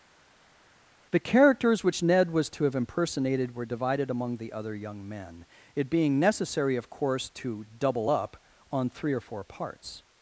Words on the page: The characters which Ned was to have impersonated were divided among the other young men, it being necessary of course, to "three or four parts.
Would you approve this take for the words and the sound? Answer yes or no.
no